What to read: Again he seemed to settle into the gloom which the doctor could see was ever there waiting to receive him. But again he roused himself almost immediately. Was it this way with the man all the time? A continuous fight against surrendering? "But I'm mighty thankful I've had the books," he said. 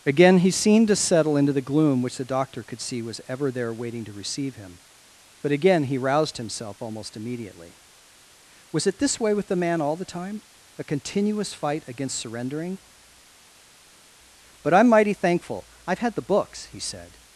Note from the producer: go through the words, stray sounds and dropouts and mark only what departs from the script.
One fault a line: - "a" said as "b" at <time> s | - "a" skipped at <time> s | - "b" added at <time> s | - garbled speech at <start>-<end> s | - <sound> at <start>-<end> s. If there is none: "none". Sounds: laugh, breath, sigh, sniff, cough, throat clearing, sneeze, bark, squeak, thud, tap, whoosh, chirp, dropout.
none